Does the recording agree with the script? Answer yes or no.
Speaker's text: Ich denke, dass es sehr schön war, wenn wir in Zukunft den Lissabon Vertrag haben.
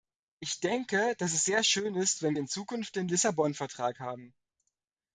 no